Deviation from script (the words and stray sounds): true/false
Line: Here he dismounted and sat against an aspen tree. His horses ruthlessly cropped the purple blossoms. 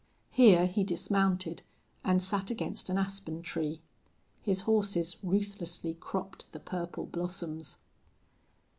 false